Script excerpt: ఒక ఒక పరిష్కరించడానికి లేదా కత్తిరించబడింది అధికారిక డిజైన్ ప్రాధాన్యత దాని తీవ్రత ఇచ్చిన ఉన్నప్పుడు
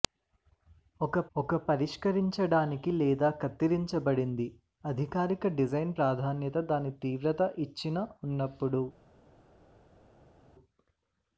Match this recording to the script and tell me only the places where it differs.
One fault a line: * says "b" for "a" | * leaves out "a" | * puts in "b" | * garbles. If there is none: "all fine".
all fine